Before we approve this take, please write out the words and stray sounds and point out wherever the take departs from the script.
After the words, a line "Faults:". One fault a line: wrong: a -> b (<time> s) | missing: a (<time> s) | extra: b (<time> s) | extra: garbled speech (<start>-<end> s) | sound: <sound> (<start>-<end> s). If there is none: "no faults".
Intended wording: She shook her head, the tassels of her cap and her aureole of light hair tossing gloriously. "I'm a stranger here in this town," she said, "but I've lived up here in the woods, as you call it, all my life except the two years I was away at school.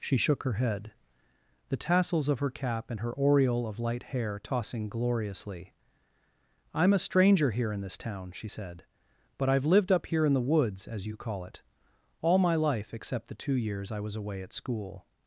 She shook her head, the tassels of her cap and her aureole of light hair tossing gloriously. "I'm a stranger here in this town," she said, "but I've lived up here in the woods, as you call it, all my life except the two years I was away at school.
Faults:
no faults